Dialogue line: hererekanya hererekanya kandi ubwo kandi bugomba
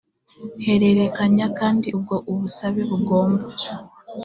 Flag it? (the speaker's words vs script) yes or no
yes